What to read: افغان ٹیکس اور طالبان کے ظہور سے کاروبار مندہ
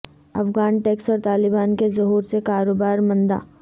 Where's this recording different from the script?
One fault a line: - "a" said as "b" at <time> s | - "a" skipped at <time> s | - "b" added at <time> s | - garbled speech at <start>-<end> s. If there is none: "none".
none